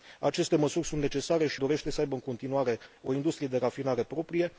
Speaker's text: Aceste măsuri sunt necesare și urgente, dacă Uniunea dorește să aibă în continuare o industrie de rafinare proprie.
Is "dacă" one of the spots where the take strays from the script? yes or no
yes